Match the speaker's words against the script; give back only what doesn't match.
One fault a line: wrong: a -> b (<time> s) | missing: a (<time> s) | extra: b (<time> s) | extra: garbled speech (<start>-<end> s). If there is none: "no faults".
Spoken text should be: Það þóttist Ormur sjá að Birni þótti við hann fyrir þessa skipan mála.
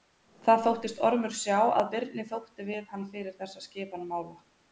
no faults